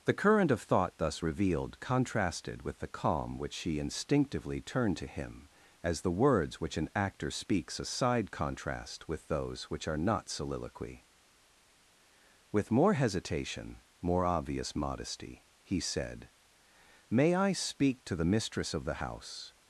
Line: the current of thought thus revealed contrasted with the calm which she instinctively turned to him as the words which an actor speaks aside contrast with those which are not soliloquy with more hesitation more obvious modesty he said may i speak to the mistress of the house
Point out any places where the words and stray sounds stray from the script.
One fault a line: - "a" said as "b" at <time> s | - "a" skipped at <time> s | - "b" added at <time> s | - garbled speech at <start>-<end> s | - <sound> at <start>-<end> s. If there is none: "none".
none